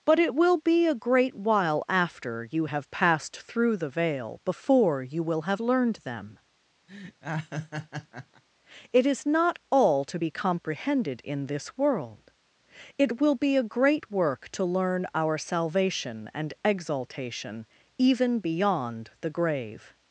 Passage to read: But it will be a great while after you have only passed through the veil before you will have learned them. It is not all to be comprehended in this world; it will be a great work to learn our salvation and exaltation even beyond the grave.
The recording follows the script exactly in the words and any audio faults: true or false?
false